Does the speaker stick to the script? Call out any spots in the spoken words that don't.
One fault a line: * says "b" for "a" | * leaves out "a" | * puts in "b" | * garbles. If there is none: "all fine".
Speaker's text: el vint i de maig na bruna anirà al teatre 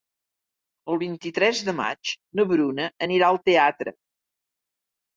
* puts in "tres"